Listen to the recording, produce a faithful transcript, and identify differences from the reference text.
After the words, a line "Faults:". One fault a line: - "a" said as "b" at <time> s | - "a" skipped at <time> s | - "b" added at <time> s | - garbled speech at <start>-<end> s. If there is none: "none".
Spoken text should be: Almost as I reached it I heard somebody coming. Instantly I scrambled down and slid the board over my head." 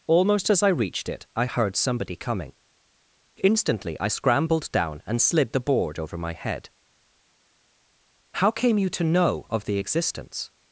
Almost as I reached it I heard somebody coming. Instantly I scrambled down and slid the board over my head." "How came you to know of the existence
Faults:
- "How came you to know of the existence" added at 8.3 s